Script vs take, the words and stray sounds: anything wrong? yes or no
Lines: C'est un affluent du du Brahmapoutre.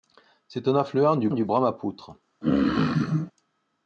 yes